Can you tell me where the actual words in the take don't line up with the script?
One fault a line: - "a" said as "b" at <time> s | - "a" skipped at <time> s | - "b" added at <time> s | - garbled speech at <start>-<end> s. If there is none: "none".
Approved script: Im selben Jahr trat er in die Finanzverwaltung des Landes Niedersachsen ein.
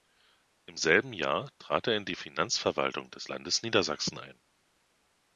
none